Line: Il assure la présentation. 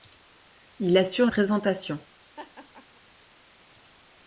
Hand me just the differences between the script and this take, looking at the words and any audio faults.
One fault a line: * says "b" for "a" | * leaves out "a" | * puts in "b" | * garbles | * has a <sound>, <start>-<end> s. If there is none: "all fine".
* leaves out "la"
* has a laugh, 2.4-3.0 s